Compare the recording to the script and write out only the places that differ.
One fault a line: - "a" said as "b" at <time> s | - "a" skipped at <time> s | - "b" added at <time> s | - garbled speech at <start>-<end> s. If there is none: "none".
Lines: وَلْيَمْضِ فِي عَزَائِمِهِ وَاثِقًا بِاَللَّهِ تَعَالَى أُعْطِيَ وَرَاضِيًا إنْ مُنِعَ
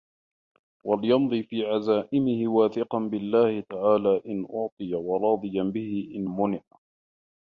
- "إنْ" added at 4.2 s
- "بِهِ" added at 5.6 s